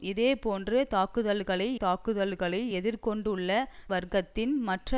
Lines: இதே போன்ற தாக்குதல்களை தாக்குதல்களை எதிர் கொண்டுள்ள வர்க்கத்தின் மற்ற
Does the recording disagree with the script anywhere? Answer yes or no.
no